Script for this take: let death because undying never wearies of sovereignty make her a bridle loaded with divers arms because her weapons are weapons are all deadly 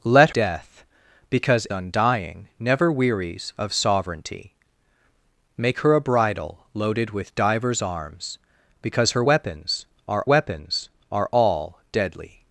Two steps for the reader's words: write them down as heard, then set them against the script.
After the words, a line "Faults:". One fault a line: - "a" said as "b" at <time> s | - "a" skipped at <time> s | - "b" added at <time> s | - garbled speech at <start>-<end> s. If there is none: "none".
let death because undying never wearies of sovereignty make her a bridle loaded with divers arms because her weapons are weapons are all deadly
Faults:
none